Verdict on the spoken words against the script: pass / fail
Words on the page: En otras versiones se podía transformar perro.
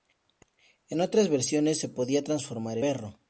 pass